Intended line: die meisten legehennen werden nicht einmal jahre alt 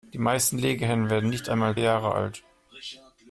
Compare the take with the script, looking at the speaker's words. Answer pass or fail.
pass